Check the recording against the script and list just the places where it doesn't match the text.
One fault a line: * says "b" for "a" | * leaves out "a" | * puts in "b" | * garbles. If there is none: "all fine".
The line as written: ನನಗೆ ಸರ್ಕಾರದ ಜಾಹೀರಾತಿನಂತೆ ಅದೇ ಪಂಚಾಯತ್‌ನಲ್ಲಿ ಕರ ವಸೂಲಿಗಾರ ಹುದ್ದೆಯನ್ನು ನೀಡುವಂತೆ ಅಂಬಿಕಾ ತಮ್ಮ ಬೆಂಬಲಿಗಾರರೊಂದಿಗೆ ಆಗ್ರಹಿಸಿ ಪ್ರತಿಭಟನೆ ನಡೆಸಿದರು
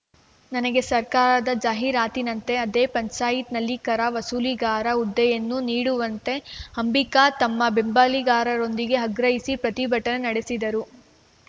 all fine